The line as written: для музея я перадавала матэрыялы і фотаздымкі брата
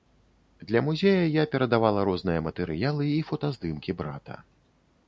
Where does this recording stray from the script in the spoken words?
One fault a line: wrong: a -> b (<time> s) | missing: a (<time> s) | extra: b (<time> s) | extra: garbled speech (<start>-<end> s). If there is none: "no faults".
extra: розныя (2.1 s)